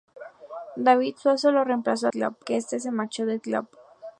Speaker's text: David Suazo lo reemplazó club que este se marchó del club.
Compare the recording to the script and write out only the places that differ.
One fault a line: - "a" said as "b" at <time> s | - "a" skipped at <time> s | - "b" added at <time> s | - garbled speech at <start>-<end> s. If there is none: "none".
none